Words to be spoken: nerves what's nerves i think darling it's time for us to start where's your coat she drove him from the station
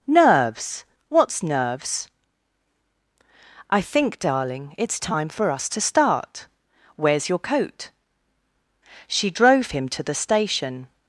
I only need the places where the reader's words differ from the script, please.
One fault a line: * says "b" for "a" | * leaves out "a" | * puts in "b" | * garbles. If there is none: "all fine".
* says "to" for "from"